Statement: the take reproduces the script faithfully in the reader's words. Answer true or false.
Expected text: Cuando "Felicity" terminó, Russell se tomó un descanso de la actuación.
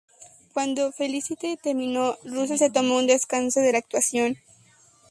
true